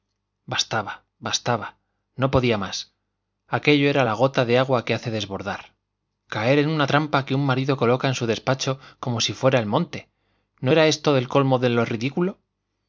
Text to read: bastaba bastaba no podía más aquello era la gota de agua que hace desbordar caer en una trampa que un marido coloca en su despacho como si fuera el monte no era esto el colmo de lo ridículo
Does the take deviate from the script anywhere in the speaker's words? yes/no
no